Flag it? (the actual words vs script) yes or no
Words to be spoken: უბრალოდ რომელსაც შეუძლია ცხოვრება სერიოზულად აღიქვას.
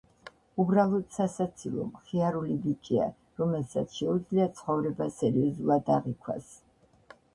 yes